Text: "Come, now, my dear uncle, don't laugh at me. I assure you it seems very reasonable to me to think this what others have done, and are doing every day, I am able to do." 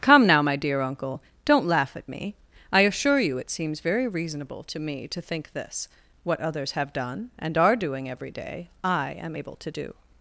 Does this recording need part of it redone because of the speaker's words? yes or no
no